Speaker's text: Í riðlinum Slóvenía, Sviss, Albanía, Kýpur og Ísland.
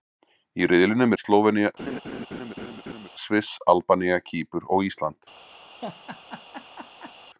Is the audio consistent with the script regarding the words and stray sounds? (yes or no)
no